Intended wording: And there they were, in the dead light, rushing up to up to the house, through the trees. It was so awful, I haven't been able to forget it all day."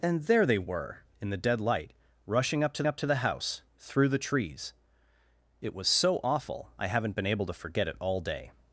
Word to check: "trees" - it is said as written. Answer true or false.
true